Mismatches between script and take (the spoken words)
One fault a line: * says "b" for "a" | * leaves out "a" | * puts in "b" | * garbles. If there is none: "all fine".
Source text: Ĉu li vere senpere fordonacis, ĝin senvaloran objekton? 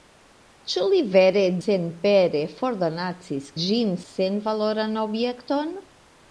all fine